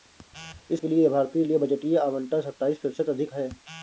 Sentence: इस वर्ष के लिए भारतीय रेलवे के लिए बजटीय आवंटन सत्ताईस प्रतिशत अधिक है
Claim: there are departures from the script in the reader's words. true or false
true